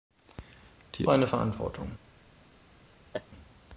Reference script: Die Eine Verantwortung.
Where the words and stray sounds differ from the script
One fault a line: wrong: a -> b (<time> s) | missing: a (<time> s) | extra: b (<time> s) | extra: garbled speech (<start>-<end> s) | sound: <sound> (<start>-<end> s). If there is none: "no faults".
sound: laugh (3.1-3.3 s)